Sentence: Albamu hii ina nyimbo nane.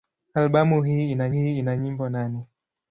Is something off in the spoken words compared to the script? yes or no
yes